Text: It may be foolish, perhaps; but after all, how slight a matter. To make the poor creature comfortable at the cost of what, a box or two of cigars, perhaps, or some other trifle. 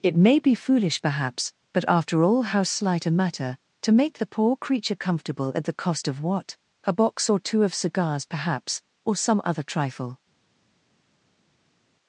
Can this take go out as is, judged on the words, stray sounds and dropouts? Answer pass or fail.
pass